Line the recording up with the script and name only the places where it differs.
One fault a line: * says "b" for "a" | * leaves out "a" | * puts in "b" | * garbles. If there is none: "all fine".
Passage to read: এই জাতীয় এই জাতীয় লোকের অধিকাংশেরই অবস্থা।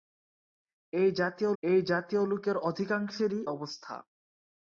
all fine